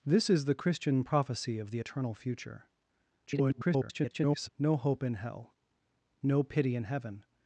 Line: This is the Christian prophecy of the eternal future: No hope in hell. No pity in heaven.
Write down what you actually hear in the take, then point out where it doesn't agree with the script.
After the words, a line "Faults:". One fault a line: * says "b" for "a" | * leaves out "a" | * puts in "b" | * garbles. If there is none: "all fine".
This is the Christian prophecy of the eternal future: [garbled] No hope in hell. No pity in heaven.
Faults:
* garbles